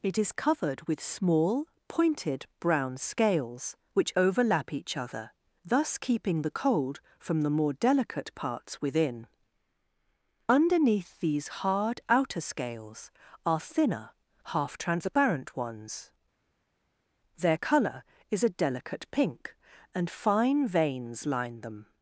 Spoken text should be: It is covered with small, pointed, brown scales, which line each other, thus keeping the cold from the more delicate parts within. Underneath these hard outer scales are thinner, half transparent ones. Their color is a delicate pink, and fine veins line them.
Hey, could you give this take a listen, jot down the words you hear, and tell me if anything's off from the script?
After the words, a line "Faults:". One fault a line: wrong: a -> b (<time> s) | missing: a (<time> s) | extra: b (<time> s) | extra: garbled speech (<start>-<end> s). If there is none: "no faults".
It is covered with small, pointed, brown scales, which overlap each other, thus keeping the cold from the more delicate parts within. Underneath these hard outer scales are thinner, half transparent ones. Their color is a delicate pink, and fine veins line them.
Faults:
wrong: line -> overlap (4.1 s)